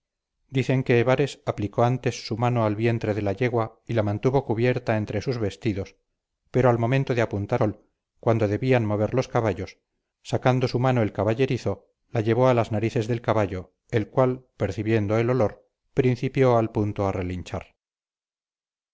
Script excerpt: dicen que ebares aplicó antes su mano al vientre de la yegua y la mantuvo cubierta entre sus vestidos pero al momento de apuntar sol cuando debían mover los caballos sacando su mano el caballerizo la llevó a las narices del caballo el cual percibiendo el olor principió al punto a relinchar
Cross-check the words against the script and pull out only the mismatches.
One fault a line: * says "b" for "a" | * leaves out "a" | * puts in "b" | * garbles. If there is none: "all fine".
all fine